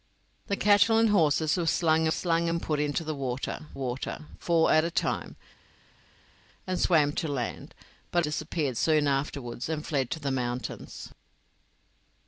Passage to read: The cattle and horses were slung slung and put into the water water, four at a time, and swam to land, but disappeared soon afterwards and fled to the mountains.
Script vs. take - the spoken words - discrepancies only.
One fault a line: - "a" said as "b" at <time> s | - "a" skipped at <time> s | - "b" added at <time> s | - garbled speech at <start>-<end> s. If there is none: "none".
none